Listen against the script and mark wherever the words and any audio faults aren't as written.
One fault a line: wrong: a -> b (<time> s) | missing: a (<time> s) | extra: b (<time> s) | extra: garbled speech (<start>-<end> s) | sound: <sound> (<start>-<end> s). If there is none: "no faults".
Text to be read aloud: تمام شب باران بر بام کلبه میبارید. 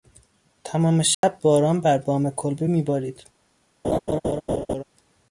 sound: dropout (1.1-1.2 s)
sound: laugh (3.8-4.8 s)